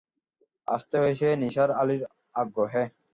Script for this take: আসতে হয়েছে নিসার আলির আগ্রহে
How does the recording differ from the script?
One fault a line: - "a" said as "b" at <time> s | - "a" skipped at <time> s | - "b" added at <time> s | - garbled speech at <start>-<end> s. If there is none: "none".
none